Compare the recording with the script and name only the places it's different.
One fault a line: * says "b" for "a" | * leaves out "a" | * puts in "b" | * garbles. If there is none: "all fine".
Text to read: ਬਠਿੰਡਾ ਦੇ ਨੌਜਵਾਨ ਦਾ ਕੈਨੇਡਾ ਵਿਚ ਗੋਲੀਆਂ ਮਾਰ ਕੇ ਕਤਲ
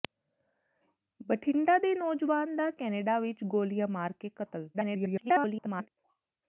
* garbles